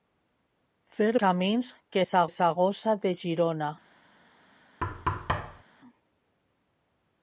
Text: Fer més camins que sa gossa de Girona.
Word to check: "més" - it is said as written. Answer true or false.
false